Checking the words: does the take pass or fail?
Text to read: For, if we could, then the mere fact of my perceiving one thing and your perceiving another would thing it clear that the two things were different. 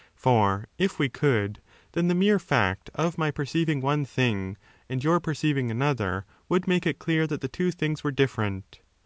fail